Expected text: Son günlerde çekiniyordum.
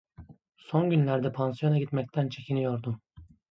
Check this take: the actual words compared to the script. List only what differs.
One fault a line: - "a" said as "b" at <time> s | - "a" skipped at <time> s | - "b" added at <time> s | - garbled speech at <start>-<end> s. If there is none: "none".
- "pansiyona gitmekten" added at 1.3 s